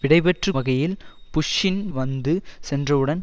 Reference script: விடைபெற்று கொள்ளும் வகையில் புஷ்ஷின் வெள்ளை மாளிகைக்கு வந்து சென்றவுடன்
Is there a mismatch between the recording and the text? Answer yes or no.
yes